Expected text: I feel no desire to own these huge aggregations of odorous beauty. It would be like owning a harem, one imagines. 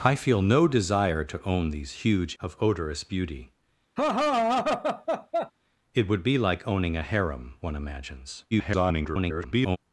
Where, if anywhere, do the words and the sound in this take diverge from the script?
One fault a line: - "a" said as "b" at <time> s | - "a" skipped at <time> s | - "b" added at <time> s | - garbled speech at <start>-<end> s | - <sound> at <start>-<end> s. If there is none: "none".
- "aggregations" skipped at 2.4 s
- laugh at 4.0-5.5 s
- garbled speech at 8.5-9.8 s